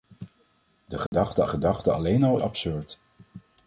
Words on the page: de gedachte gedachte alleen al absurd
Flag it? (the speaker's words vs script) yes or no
no